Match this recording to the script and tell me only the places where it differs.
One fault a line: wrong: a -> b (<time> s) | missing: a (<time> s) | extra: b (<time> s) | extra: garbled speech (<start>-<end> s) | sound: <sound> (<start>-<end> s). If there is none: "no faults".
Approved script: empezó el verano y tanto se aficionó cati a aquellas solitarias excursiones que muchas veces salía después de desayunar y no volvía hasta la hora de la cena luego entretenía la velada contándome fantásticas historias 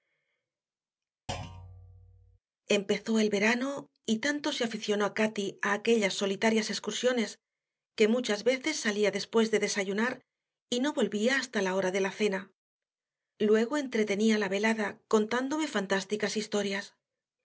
sound: thud (1.3-2.4 s)